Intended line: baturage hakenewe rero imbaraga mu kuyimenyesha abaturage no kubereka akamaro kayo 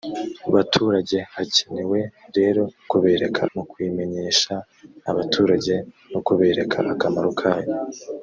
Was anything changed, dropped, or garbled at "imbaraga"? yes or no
yes